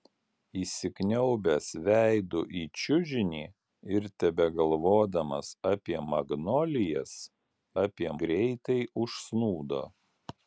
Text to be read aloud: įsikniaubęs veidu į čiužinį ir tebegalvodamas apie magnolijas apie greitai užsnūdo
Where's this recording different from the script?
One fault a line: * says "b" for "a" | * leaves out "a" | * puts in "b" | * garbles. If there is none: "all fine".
all fine